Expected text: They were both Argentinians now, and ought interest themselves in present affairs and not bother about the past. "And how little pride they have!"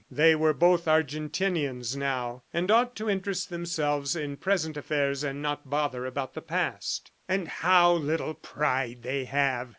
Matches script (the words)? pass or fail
fail